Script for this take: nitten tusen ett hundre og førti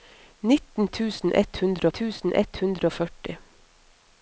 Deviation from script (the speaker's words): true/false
true